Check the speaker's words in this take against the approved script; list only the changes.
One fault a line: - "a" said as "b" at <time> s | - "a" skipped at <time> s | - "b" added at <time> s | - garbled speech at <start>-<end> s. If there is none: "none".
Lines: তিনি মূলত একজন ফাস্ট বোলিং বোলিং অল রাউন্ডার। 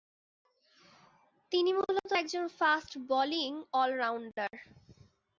- "বোলিং" skipped at 3.5 s